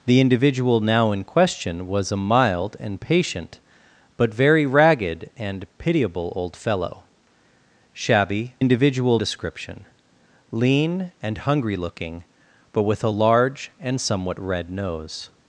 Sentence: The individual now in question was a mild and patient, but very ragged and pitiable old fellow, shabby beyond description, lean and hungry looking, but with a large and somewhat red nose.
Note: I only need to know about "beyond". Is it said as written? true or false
false